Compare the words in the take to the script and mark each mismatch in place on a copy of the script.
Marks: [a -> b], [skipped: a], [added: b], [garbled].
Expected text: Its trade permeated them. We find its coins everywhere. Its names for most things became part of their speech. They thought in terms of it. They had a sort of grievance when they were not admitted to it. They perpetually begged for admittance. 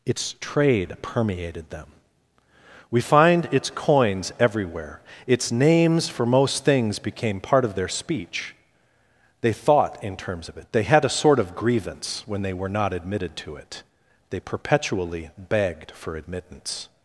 Its trade permeated them. We find its coins everywhere. Its names for most things became part of their speech. They thought in terms of it. They had a sort of grievance when they were not admitted to it. They perpetually begged for admittance.